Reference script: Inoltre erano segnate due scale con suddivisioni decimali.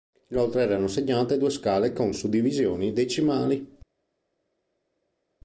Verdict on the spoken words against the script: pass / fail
pass